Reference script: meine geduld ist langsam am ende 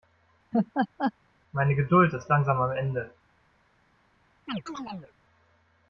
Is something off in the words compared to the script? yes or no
no